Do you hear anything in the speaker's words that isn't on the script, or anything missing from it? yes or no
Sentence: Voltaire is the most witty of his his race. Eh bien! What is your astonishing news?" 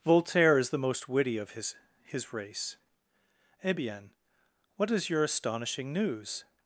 no